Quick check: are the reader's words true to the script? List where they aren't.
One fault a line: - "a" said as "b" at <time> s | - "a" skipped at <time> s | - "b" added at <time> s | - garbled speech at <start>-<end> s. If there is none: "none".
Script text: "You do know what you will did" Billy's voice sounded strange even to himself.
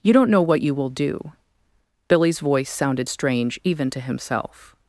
- "do" said as "don't" at 0.1 s
- "did" said as "do" at 0.9 s